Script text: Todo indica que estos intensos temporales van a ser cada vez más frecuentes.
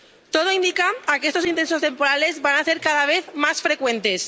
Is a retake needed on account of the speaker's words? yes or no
no